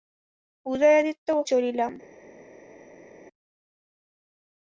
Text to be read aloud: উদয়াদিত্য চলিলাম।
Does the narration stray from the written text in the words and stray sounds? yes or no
no